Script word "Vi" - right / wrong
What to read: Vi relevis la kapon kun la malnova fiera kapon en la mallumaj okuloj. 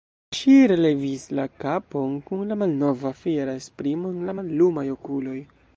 wrong